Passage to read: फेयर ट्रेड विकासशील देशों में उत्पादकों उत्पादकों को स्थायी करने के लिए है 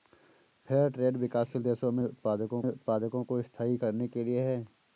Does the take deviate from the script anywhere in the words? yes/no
no